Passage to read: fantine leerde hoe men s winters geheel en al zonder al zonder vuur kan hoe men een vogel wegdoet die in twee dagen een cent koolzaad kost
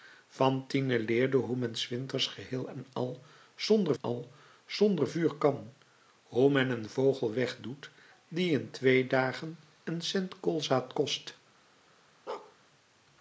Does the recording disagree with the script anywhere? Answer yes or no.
no